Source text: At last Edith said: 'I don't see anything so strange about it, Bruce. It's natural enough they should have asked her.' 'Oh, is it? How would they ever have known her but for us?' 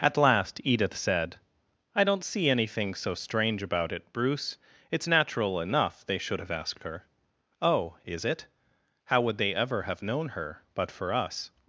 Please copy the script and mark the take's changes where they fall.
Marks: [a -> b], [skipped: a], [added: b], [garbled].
At last Edith said: 'I don't see anything so strange about it, Bruce. It's natural enough they should have asked her.' 'Oh, is it? How would they ever have known her but for us?'